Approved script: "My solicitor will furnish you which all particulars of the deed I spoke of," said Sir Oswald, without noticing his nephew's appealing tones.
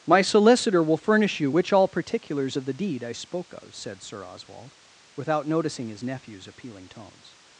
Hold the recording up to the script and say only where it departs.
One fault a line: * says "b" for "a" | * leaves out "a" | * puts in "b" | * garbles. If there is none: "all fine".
all fine